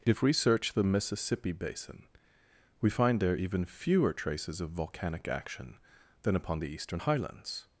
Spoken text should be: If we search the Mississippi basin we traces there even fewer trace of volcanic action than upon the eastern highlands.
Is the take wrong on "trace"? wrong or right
wrong